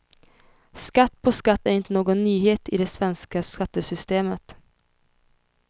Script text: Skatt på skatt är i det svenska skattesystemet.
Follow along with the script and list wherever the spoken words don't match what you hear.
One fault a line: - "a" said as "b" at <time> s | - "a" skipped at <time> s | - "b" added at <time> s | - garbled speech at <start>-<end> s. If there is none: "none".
- "inte någon nyhet" added at 1.7 s